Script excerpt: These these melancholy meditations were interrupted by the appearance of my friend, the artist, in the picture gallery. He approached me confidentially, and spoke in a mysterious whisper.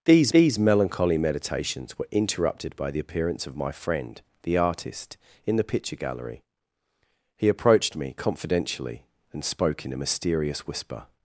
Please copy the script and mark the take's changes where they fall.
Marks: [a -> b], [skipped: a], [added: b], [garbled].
These these melancholy meditations were interrupted by the appearance of my friend, the artist, in the picture gallery. He approached me confidentially, and spoke in a mysterious whisper.